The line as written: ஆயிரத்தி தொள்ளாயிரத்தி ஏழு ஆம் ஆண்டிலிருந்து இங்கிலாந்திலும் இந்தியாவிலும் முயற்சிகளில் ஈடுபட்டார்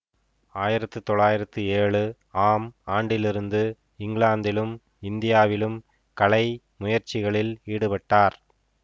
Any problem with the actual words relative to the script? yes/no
yes